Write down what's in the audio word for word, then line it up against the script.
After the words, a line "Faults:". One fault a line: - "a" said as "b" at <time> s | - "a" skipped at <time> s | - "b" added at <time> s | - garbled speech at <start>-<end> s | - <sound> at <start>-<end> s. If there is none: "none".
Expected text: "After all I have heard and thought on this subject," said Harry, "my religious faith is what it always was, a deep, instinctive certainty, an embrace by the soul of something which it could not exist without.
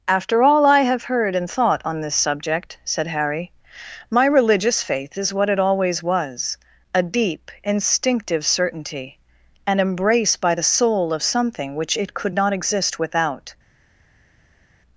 "After all I have heard and thought on this subject," said Harry, "my religious faith is what it always was, a deep, instinctive certainty, an embrace by the soul of something which it could not exist without.
Faults:
none